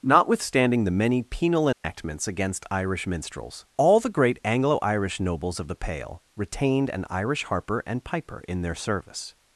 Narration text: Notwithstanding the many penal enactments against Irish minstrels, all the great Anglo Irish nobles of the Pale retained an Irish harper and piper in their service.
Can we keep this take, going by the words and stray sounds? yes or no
no